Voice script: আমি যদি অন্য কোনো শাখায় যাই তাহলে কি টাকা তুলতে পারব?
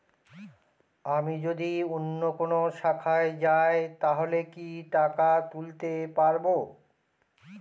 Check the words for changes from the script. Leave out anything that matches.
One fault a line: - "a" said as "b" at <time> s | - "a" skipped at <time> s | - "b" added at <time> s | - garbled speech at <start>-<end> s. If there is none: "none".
none